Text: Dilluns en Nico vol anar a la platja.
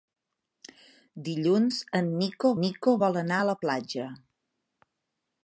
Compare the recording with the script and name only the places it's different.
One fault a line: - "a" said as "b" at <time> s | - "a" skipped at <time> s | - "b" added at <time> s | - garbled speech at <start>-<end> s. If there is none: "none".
- "Nico" added at 2.6 s